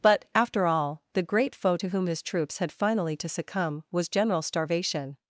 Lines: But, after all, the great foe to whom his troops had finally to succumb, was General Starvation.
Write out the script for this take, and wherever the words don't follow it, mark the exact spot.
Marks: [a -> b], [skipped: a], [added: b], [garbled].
But, after all, the great foe to whom his troops had finally to succumb, was General Starvation.